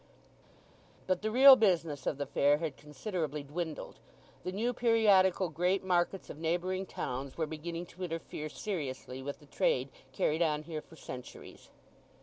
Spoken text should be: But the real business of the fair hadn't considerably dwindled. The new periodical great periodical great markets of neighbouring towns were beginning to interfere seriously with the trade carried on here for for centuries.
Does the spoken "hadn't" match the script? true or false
false